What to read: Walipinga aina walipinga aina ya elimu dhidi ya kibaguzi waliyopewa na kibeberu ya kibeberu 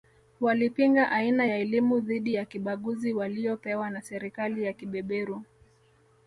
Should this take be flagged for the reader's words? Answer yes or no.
yes